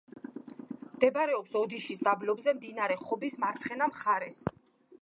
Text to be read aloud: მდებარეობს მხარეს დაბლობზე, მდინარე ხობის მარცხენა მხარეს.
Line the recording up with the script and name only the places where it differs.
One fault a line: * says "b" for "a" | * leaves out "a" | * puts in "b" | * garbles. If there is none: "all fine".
* says "ოდიშის" for "მხარეს"